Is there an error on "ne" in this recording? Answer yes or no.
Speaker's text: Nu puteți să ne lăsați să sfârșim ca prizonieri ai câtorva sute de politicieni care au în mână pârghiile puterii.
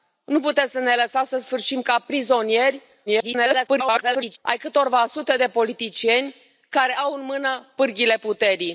no